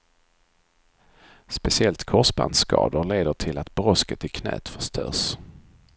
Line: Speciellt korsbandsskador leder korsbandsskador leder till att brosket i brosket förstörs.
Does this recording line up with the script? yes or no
no